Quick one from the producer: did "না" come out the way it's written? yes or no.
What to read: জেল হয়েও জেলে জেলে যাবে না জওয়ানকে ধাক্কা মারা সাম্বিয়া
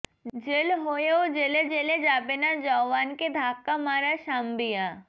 yes